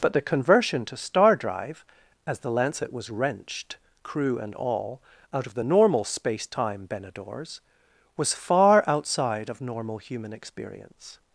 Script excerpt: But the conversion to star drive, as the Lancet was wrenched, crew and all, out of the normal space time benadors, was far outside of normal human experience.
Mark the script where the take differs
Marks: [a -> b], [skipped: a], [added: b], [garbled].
But the conversion to star drive, as the Lancet was wrenched, crew and all, out of the normal space time benadors, was far outside of normal human experience.